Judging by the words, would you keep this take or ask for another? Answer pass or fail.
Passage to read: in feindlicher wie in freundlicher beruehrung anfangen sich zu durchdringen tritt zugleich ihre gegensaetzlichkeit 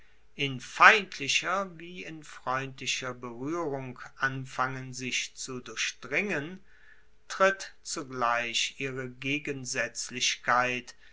pass